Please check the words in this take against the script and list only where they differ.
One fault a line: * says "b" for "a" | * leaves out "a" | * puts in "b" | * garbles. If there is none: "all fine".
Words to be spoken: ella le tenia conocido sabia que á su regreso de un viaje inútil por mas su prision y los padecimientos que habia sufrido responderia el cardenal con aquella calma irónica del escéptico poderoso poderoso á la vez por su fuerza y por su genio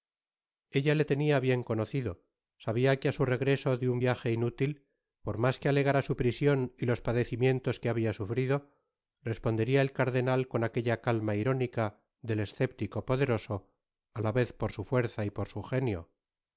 * puts in "bien"
* puts in "que alegara"
* leaves out "poderoso"